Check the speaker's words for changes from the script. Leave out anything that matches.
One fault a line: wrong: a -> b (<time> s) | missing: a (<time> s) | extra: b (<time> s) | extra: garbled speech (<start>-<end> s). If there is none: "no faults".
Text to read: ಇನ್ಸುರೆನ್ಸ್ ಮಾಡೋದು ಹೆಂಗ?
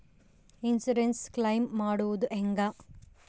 extra: ಕ್ಲೈಮು (1.3 s)